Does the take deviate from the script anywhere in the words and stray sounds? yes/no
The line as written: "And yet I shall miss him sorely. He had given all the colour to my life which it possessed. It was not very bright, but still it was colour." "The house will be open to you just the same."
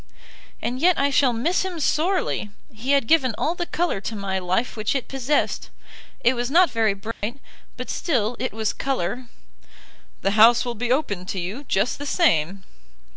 yes